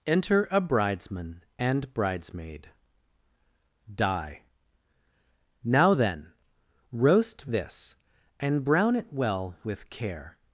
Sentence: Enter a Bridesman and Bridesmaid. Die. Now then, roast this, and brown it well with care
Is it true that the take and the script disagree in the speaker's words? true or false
false